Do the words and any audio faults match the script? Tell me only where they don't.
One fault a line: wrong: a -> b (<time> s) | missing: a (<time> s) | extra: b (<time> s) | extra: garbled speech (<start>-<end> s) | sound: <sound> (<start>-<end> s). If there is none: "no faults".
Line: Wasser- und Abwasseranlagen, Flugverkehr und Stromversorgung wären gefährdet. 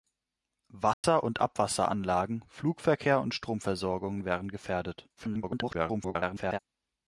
sound: dropout (0.9-1.0 s)
extra: garbled speech (5.2-6.6 s)